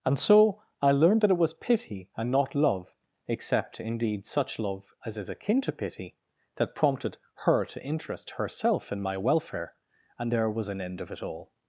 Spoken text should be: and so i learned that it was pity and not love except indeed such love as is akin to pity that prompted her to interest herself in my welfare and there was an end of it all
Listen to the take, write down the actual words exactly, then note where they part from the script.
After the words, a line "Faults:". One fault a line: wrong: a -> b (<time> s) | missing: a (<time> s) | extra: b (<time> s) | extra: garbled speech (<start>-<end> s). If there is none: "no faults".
and so i learned that it was pity and not love except indeed such love as is akin to pity that prompted her to interest herself in my welfare and there was an end of it all
Faults:
no faults